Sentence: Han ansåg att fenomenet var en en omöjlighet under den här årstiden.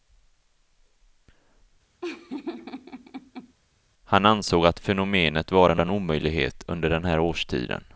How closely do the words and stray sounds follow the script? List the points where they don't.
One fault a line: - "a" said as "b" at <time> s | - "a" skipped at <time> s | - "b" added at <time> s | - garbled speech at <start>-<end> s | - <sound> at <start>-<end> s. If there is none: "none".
- laugh at 2.0-3.5 s